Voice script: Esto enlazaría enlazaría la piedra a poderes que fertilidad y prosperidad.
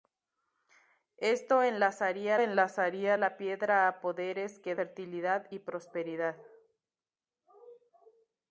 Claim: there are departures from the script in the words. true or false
false